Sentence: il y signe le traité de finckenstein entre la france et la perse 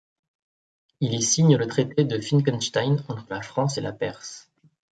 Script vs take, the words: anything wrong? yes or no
no